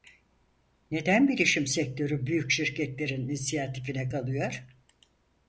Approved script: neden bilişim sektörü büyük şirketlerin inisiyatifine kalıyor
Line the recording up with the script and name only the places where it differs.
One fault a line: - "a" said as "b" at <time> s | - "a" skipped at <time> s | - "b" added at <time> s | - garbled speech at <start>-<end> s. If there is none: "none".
none